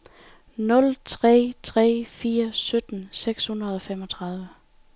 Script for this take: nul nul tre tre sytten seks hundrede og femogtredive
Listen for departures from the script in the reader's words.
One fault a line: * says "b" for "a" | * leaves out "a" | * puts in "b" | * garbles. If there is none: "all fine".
* says "tre" for "nul"
* says "fire" for "tre"